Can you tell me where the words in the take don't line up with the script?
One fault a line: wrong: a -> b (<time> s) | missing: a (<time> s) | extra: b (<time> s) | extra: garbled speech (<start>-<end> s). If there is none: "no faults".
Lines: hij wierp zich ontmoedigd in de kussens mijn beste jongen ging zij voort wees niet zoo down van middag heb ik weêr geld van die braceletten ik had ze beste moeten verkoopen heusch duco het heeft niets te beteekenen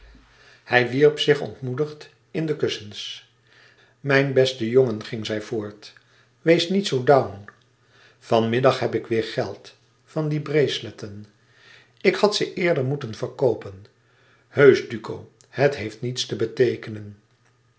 wrong: beste -> eerder (12.5 s)